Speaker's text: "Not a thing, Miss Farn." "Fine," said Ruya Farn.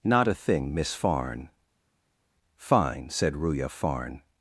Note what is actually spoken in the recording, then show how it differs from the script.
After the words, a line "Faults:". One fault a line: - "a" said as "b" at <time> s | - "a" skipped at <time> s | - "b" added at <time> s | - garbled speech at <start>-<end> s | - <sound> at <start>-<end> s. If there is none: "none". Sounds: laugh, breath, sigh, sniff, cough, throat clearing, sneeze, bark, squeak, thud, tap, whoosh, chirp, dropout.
"Not a thing, Miss Farn." "Fine," said Ruya Farn.
Faults:
none